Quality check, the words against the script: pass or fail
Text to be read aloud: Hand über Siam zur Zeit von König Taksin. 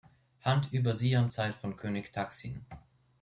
fail